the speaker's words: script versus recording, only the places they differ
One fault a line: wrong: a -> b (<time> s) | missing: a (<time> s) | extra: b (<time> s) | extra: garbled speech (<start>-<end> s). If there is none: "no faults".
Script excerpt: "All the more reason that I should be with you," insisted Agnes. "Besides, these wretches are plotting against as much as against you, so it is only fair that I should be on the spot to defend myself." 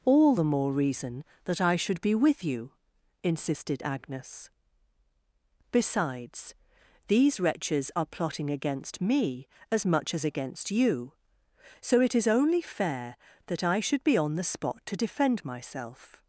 extra: me (9.0 s)